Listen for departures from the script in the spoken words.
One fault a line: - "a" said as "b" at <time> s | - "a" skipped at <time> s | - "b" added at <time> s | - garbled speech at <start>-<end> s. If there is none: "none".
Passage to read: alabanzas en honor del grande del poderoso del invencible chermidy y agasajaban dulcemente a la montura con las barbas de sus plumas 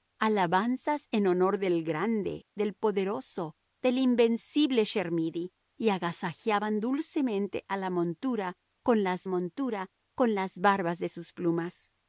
- "montura con las" added at 9.3 s